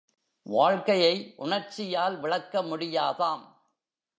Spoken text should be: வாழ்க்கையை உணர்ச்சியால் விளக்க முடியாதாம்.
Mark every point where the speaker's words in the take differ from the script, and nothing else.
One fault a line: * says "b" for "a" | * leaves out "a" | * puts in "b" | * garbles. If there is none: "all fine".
all fine